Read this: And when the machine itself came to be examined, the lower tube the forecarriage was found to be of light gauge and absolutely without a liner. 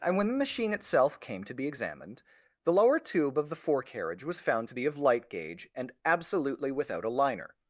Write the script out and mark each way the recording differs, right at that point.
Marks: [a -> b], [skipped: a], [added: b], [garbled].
And when the machine itself came to be examined, the lower tube [added: of] the forecarriage was found to be of light gauge and absolutely without a liner.